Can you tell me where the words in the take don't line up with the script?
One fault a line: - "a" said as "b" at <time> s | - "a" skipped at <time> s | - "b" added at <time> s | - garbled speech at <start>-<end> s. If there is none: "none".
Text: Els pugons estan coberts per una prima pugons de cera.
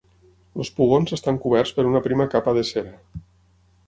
- "pugons" said as "capa" at 2.3 s